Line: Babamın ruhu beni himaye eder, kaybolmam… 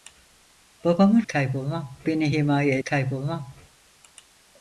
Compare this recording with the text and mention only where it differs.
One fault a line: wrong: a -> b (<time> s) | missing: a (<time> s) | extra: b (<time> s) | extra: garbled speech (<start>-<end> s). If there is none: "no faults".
wrong: ruhu -> kaybolmam (1.3 s)
missing: eder (2.8 s)